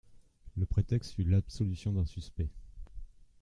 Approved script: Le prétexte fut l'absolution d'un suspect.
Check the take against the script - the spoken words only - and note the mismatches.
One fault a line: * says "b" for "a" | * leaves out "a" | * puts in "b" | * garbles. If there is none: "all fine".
all fine